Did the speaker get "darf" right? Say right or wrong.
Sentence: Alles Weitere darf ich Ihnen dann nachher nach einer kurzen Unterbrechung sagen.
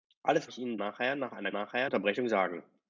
wrong